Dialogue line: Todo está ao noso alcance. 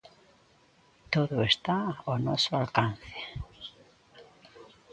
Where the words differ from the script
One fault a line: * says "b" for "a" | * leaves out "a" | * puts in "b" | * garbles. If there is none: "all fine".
all fine